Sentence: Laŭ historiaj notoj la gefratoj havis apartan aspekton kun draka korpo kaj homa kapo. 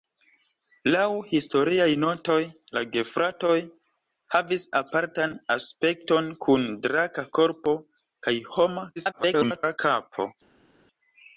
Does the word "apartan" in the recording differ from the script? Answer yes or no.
no